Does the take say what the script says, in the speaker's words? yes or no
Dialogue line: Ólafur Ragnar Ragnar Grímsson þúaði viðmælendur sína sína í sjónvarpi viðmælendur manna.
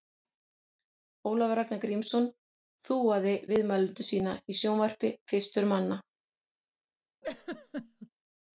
no